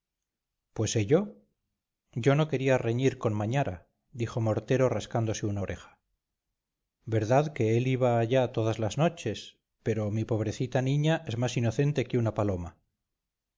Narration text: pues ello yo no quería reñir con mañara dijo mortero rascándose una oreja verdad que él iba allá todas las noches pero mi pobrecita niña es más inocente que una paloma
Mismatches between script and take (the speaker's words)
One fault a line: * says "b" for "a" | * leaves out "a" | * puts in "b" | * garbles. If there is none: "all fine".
all fine